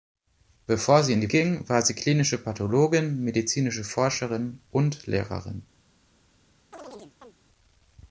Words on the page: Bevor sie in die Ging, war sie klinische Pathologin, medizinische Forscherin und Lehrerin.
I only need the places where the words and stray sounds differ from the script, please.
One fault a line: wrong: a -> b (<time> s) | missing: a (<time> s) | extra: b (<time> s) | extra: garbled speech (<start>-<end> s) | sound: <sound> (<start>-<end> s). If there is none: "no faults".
sound: chirp (6.7-7.4 s)